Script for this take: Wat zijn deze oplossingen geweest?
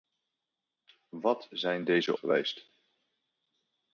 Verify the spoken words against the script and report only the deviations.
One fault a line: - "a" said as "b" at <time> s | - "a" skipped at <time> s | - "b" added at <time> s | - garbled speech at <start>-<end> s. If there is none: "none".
- "oplossingen" skipped at 2.1 s